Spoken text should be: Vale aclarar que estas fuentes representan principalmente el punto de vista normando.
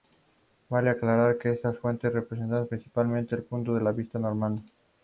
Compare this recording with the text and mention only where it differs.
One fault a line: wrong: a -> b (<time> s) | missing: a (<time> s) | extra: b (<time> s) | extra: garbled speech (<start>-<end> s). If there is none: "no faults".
no faults